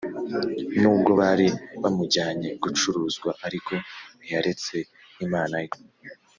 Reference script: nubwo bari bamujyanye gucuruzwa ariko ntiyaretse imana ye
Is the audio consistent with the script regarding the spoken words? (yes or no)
yes